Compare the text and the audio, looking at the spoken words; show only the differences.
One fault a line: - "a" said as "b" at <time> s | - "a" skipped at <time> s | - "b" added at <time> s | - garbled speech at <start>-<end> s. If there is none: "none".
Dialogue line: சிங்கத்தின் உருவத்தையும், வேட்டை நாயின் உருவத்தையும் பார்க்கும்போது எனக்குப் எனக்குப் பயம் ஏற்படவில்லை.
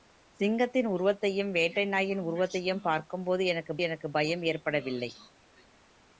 none